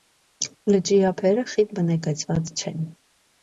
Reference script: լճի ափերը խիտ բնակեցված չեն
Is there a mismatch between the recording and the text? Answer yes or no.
no